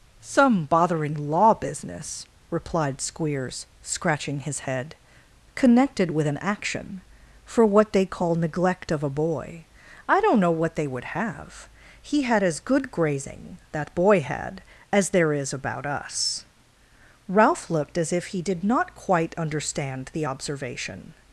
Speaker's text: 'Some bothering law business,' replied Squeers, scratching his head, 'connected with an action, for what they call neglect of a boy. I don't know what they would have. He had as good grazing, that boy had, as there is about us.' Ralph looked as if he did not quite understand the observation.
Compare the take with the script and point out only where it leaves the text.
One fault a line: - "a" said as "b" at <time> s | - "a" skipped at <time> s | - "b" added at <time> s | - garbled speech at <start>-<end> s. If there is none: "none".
none